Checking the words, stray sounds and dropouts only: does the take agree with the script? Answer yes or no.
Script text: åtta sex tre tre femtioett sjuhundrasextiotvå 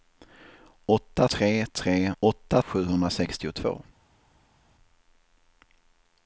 no